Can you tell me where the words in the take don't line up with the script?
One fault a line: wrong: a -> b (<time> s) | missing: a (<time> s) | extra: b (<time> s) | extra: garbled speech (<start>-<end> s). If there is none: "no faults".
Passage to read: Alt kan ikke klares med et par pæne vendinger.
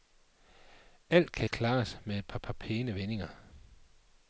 missing: ikke (1.5 s)
extra: par (2.4 s)